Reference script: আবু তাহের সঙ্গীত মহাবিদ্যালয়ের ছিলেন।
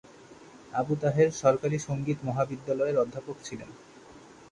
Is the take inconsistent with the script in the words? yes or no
yes